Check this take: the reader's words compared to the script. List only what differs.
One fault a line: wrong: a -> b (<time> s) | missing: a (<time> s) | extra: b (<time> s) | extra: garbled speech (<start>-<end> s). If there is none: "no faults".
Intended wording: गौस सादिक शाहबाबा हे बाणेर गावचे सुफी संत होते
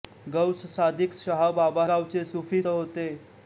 missing: हे बाणेर (1.9 s)
missing: संत (2.6 s)